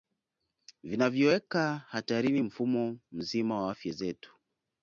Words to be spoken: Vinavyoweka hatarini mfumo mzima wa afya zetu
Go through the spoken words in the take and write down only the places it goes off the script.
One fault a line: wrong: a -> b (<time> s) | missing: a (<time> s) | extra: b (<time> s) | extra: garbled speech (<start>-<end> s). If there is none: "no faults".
no faults